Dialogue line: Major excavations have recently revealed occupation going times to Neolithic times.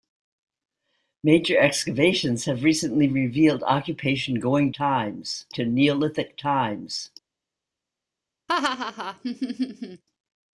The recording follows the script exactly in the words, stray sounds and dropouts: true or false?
false